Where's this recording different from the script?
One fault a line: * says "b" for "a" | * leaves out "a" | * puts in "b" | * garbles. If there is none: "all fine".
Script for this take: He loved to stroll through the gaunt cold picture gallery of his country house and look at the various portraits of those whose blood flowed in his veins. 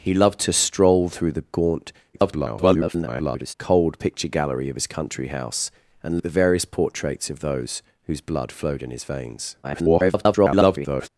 * garbles
* leaves out "look"
* garbles